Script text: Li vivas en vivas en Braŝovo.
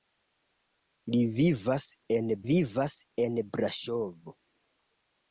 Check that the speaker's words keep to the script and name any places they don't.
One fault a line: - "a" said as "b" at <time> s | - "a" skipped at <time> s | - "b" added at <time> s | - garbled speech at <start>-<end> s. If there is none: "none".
none